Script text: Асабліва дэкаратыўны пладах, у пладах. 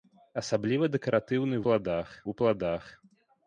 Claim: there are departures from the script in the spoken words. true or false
false